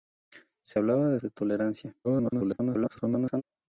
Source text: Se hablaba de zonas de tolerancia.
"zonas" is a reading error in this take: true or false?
true